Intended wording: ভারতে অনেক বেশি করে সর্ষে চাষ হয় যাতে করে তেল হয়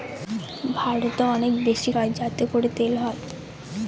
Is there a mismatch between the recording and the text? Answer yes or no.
yes